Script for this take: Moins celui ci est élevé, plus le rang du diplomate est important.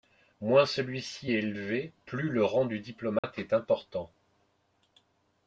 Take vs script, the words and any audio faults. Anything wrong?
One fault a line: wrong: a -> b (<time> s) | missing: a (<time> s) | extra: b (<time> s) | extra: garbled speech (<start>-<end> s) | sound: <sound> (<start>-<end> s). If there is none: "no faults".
sound: dropout (3.2-3.2 s)